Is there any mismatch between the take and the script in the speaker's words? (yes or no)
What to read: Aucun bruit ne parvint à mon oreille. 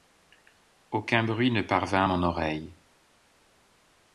no